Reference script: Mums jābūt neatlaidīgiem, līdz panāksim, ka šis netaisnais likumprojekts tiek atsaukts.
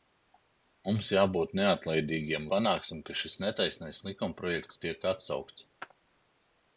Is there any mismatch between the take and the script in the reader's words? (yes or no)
yes